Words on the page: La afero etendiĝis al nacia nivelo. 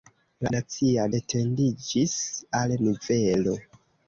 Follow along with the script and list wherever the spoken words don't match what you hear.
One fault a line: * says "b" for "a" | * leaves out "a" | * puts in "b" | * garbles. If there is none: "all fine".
* says "nacia" for "afero"
* leaves out "nacia"